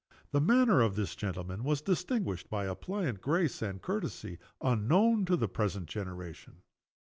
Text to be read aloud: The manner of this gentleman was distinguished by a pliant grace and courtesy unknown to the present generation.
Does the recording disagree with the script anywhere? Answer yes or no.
no